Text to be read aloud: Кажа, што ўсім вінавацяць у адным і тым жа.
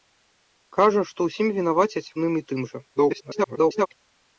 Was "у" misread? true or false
true